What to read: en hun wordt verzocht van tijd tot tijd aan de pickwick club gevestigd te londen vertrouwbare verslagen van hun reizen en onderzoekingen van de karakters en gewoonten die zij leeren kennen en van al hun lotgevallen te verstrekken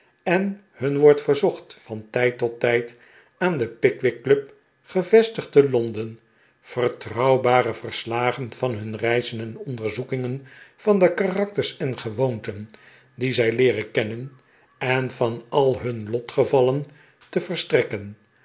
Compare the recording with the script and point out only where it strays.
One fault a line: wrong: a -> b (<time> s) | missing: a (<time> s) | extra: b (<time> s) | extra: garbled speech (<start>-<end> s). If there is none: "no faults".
no faults